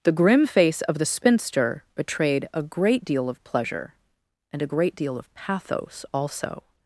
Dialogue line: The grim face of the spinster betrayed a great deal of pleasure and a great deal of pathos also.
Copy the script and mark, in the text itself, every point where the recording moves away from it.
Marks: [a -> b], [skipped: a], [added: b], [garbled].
The grim face of the spinster betrayed a great deal of pleasure and a great deal of pathos also.